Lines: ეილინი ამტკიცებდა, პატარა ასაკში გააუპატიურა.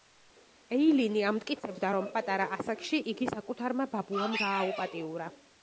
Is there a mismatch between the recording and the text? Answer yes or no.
yes